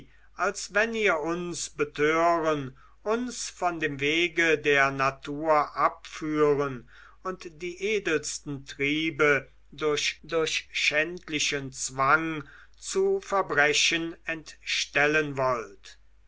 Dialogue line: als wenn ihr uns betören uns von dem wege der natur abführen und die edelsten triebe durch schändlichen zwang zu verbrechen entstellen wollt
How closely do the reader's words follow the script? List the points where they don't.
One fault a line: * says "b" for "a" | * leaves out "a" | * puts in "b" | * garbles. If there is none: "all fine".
* puts in "durch"